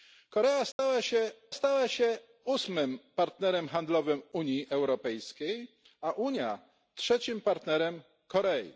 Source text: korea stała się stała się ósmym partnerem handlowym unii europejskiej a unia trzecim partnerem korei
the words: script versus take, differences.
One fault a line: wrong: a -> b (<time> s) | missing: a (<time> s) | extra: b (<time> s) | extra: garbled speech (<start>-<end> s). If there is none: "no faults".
no faults